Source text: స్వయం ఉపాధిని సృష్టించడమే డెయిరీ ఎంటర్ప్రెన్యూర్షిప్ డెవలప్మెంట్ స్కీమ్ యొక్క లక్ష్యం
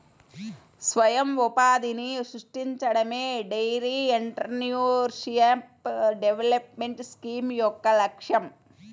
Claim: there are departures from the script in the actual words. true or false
false